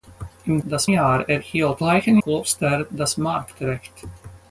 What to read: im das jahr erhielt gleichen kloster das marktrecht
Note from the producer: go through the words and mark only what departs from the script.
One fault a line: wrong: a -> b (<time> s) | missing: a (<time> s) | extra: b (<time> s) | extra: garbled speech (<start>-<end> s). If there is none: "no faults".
no faults